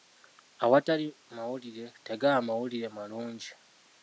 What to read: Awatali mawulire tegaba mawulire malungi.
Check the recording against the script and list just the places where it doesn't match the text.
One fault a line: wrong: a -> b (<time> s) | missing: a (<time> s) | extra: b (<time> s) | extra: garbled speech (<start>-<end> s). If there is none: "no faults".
no faults